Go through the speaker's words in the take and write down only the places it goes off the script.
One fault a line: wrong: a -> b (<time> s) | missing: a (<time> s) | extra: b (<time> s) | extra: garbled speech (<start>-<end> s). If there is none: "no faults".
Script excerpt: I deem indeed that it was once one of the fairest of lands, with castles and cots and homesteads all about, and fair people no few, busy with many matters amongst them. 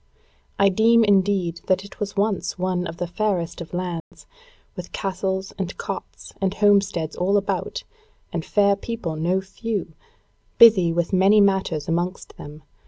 no faults